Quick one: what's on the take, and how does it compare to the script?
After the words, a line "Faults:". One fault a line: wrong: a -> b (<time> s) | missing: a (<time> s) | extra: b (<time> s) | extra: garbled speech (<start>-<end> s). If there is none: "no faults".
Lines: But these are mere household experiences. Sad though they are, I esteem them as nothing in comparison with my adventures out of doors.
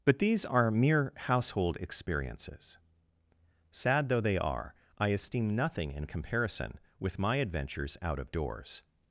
But these are mere household experiences. Sad though they are, I esteem nothing in comparison with my adventures out of doors.
Faults:
missing: them as (5.5 s)